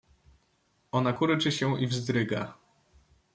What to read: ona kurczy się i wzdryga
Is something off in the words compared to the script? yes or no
no